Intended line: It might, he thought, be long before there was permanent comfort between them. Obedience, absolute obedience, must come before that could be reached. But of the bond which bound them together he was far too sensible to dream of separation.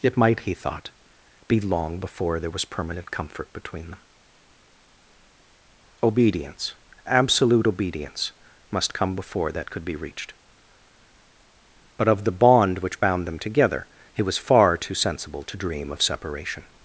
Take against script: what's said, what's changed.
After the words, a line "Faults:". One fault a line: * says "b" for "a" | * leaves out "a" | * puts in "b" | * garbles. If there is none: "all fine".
It might, he thought, be long before there was permanent comfort between them. Obedience, absolute obedience, must come before that could be reached. But of the bond which bound them together he was far too sensible to dream of separation.
Faults:
all fine